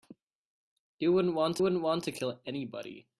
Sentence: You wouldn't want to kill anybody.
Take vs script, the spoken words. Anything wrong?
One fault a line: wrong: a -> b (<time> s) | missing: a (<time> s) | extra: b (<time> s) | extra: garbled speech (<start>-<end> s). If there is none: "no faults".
extra: wouldn't want (1.6 s)